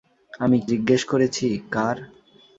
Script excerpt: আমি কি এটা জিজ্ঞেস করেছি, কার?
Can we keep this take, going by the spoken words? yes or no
no